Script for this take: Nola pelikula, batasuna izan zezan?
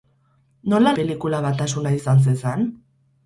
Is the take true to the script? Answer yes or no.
yes